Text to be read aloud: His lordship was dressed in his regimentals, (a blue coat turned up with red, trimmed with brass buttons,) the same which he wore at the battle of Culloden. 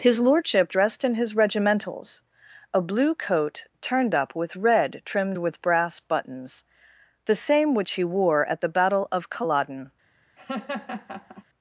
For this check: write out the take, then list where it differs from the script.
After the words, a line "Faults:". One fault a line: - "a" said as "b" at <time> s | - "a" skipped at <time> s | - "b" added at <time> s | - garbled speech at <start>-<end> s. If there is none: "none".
His lordship dressed in his regimentals, (a blue coat turned up with red, trimmed with brass buttons,) the same which he wore at the battle of Culloden.
Faults:
- "was" skipped at 0.7 s